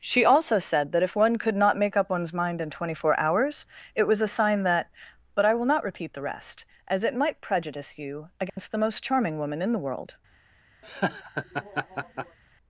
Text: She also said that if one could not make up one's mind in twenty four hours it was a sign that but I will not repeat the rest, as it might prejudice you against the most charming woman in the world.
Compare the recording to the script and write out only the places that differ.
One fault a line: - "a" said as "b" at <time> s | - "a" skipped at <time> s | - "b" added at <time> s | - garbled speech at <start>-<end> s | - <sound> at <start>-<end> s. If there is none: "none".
- dropout at 8.5-8.6 s
- laugh at 10.8-12.4 s